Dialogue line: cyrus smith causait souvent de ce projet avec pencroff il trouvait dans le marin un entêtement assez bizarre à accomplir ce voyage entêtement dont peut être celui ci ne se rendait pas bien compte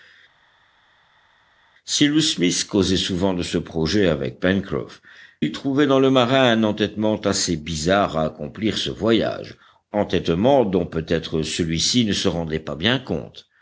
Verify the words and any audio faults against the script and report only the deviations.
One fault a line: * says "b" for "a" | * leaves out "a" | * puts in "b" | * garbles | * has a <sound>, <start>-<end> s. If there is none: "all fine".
all fine